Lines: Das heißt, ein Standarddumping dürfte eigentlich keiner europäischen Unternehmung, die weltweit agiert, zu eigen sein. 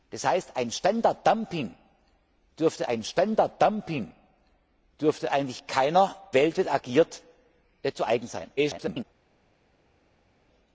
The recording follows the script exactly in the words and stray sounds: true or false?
false